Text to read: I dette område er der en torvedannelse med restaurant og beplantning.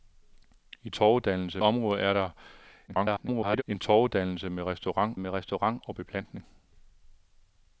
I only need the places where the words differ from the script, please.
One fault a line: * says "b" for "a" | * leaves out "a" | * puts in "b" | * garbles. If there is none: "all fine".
* says "torvedannelse" for "dette"
* garbles
* puts in "med restaurant"